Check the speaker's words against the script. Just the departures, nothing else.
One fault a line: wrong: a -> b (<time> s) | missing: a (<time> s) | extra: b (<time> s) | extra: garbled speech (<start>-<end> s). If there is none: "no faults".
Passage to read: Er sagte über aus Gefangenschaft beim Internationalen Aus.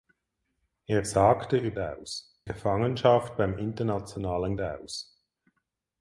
no faults